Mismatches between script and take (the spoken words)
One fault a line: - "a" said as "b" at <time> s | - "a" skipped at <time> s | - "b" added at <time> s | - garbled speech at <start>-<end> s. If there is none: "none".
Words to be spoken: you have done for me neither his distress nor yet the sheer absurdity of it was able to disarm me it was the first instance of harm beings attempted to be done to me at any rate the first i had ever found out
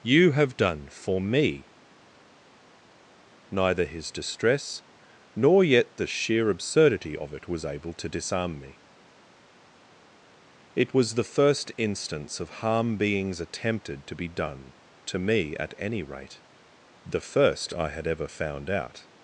none